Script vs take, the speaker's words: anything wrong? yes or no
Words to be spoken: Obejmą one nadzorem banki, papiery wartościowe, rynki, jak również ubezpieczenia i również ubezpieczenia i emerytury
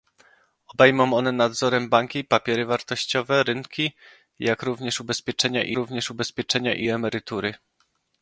no